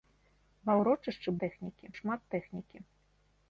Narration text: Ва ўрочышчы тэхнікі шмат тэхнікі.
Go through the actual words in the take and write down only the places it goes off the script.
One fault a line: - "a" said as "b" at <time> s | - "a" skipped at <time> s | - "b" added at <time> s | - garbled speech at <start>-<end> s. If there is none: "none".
none